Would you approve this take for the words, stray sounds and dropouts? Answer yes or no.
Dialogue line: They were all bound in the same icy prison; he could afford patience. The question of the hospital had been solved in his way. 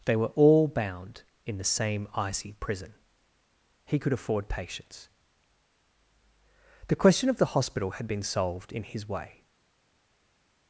yes